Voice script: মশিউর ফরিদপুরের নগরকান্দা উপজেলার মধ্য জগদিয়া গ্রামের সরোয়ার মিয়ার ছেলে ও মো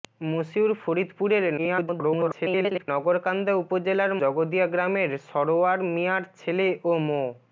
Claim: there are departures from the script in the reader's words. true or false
true